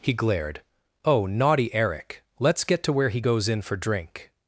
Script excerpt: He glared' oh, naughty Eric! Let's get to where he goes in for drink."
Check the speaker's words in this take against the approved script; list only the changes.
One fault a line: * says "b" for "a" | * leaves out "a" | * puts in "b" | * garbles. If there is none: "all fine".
all fine